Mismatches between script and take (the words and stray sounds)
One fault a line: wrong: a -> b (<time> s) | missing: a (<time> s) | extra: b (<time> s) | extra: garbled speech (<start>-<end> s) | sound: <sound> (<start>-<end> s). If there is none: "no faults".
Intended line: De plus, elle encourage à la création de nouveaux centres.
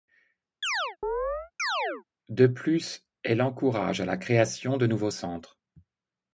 sound: chirp (0.6-2.0 s)